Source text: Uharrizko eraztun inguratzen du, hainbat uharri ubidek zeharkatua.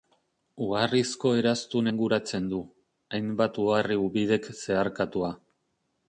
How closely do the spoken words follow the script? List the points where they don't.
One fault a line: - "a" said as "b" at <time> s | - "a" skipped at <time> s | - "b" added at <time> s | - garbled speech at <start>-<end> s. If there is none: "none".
none